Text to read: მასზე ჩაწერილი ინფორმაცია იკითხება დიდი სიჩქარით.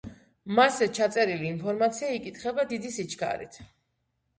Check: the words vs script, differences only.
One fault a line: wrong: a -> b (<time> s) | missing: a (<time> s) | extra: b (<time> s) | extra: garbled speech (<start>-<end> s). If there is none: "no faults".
no faults